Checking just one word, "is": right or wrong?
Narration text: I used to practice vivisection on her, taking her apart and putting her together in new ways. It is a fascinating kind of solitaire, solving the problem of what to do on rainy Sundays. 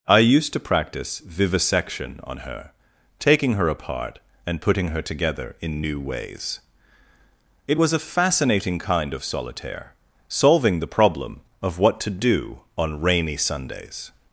wrong